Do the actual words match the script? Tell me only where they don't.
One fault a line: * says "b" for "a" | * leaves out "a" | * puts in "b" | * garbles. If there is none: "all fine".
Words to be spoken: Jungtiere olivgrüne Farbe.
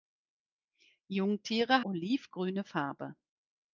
all fine